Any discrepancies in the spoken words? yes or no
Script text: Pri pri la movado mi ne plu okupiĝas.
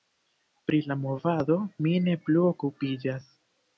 yes